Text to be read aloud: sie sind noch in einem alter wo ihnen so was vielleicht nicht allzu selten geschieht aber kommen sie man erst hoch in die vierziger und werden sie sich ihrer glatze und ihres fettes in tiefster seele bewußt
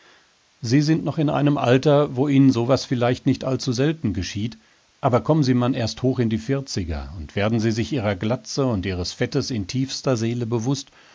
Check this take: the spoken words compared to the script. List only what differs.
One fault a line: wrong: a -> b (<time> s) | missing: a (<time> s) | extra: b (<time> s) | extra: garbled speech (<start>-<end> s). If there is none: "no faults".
no faults